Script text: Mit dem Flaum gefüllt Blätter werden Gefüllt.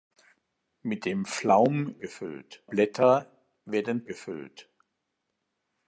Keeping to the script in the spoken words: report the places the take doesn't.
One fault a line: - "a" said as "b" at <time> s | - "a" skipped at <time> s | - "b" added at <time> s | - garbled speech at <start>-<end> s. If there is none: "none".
none